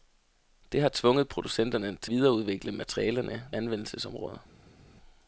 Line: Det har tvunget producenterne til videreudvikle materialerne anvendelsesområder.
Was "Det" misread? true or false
false